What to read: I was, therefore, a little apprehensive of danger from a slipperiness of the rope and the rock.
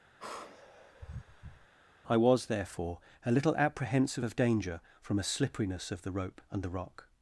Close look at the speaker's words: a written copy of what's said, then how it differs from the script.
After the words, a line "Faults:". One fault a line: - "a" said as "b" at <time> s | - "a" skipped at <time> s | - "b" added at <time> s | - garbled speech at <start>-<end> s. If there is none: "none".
I was, therefore, a little apprehensive of danger from a slipperiness of the rope and the rock.
Faults:
none